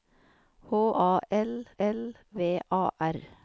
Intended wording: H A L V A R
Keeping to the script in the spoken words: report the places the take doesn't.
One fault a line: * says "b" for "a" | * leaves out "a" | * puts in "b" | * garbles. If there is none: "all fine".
* puts in "L"